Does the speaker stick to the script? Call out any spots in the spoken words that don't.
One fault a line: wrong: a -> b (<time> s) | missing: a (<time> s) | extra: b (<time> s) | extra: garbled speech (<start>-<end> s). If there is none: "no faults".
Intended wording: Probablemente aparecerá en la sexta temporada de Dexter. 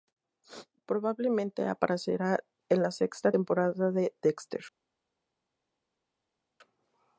no faults